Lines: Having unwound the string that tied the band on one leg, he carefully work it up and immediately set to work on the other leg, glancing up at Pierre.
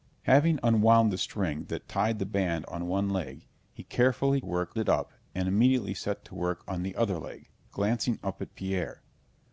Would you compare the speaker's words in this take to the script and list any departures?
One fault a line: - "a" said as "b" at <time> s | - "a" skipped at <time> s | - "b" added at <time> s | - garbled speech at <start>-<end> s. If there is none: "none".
none